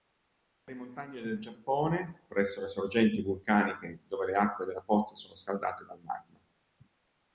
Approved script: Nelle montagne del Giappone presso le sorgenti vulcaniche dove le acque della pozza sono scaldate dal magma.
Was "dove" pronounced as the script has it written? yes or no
yes